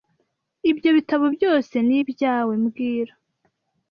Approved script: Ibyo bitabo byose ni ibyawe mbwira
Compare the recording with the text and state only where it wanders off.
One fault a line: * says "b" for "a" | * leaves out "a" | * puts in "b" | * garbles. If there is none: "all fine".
all fine